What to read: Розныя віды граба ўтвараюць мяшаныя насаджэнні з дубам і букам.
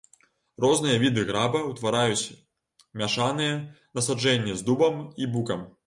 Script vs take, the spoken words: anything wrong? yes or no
no